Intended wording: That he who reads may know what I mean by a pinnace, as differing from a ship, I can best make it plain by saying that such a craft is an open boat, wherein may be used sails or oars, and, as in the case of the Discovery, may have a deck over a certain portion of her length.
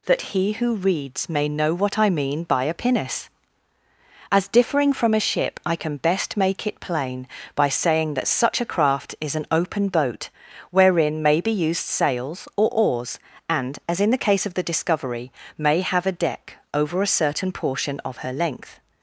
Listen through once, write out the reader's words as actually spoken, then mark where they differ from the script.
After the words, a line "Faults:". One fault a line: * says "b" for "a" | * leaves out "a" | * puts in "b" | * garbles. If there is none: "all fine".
That he who reads may know what I mean by a pinnace, as differing from a ship, I can best make it plain by saying that such a craft is an open boat, wherein may be used sails or oars, and, as in the case of the Discovery, may have a deck over a certain portion of her length.
Faults:
all fine